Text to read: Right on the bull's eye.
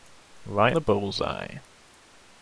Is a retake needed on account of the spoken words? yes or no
yes